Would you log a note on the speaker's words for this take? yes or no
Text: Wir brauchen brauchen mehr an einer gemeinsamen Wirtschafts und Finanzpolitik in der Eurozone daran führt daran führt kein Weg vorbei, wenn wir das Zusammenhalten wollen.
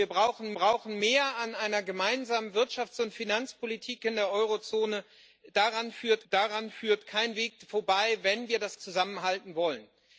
no